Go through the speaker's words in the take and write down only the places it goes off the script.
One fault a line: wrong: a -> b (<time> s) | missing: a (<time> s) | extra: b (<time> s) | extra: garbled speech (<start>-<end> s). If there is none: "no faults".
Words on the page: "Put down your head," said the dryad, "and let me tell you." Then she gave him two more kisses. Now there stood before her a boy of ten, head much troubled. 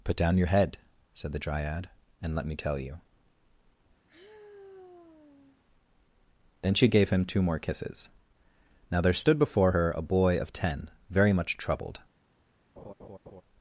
wrong: head -> very (11.1 s)